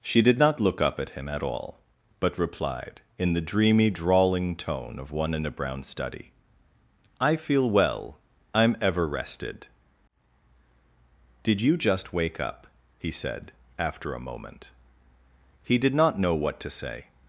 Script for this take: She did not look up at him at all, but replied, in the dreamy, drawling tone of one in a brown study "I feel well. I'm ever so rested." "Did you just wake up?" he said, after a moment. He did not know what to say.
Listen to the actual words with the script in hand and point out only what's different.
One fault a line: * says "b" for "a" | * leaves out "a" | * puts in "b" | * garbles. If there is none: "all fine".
* leaves out "so"